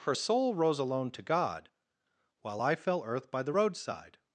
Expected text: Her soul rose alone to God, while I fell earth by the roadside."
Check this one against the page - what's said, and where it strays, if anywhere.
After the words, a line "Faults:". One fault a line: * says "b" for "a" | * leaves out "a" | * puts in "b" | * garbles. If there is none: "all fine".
Her soul rose alone to God, while I fell earth by the roadside."
Faults:
all fine